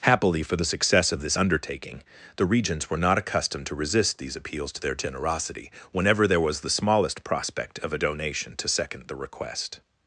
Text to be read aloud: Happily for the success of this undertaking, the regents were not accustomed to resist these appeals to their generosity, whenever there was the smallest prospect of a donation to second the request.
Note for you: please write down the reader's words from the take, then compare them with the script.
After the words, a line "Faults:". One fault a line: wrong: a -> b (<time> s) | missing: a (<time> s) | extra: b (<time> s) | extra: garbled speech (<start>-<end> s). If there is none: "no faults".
Happily for the success of this undertaking, the regents were not accustomed to resist these appeals to their generosity, whenever there was the smallest prospect of a donation to second the request.
Faults:
no faults